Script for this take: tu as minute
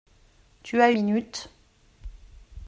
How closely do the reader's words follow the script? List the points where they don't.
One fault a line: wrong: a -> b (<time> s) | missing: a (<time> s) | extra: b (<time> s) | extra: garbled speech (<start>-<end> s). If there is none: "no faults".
no faults